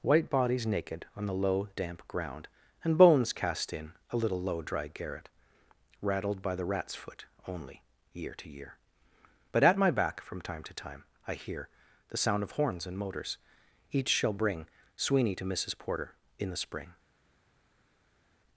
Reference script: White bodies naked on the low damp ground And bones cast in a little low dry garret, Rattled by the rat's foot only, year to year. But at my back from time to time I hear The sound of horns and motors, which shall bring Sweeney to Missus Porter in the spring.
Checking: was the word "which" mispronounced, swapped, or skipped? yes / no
yes